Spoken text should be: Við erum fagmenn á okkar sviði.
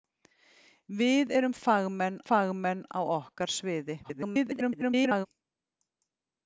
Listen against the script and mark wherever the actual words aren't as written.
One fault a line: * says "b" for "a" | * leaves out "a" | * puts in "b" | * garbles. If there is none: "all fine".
* puts in "fagmenn"
* garbles